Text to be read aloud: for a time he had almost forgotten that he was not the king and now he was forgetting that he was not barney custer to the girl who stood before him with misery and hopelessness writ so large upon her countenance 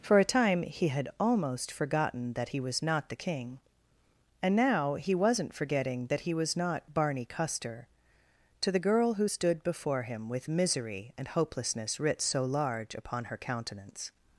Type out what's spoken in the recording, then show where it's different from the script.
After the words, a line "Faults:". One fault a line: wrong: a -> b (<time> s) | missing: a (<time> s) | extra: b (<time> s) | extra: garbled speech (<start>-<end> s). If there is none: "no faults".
for a time he had almost forgotten that he was not the king and now he wasn't forgetting that he was not barney custer to the girl who stood before him with misery and hopelessness writ so large upon her countenance
Faults:
wrong: was -> wasn't (5.1 s)